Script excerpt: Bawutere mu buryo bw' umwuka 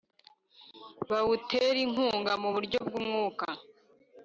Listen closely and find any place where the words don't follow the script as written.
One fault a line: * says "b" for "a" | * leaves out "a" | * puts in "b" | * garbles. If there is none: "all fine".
* puts in "inkunga"